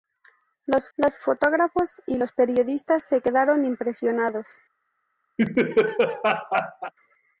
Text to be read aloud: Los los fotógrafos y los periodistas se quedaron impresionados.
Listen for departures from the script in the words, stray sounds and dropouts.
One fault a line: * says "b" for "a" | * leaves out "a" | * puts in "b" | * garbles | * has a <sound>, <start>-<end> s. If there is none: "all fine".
* has a laugh, 5.4-6.9 s